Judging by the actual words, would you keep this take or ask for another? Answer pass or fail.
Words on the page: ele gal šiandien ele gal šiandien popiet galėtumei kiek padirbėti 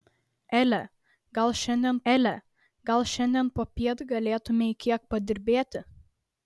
pass